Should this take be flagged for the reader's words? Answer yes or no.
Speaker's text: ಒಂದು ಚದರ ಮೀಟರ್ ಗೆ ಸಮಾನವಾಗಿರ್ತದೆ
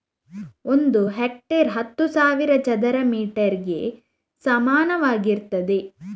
yes